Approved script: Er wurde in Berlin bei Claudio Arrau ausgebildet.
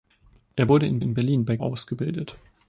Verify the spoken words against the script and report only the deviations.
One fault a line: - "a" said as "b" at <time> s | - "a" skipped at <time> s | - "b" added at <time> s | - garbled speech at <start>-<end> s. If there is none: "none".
- "in" added at 1.0 s
- "Claudio Arrau" skipped at 1.6 s